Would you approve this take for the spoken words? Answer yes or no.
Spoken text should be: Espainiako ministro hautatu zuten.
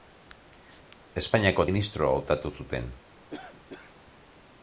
yes